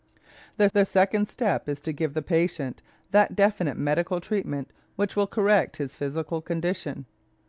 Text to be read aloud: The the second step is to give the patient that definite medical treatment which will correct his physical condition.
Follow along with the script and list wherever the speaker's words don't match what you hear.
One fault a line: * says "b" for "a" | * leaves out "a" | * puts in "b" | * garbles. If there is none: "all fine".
all fine